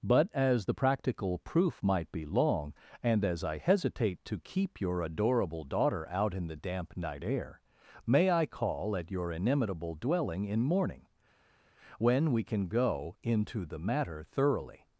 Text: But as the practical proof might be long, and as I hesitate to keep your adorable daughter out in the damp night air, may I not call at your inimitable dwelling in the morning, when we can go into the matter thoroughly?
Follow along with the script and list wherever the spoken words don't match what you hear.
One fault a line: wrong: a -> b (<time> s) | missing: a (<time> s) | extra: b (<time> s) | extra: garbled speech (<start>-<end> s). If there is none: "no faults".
missing: not (8.5 s)
missing: the (10.6 s)